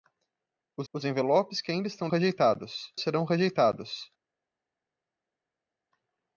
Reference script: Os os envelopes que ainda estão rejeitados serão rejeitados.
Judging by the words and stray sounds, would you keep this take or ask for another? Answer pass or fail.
pass